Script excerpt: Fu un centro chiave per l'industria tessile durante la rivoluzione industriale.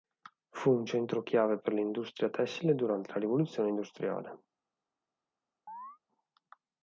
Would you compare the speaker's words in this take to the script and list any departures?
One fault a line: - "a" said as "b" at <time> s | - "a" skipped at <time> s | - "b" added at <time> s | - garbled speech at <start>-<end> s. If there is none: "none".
none